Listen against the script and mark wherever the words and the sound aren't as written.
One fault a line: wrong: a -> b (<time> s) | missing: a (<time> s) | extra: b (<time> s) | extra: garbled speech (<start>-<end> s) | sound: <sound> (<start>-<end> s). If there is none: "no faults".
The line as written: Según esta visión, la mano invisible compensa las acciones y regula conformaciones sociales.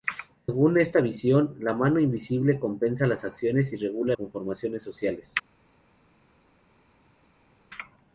no faults